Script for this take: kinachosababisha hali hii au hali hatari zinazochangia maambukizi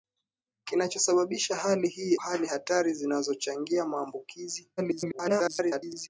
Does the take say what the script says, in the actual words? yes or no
no